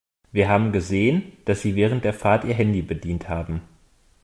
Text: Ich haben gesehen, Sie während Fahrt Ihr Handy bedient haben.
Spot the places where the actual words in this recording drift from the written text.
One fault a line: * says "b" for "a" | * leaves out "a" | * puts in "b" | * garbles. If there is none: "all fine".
* says "Wir" for "Ich"
* puts in "dass"
* puts in "der"